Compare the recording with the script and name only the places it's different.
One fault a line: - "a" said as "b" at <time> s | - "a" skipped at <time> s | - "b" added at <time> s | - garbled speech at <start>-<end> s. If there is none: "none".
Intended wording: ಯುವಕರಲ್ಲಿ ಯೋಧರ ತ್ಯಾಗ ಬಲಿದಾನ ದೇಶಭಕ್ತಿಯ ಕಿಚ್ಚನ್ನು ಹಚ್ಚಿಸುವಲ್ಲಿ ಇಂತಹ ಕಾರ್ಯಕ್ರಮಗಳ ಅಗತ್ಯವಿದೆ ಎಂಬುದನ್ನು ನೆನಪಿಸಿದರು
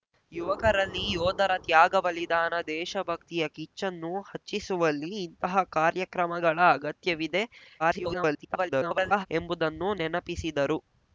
- garbled speech at 7.8-9.3 s